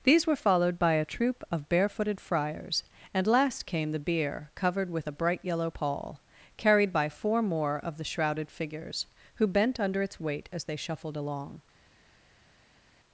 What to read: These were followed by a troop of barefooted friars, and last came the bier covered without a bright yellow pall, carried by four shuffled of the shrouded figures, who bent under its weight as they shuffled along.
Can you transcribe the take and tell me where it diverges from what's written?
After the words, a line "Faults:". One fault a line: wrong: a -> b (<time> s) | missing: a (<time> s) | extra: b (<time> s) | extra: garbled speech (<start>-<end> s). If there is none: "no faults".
These were followed by a troop of barefooted friars, and last came the bier covered with a bright yellow pall, carried by four more of the shrouded figures, who bent under its weight as they shuffled along.
Faults:
wrong: without -> with (4.9 s)
wrong: shuffled -> more (7.4 s)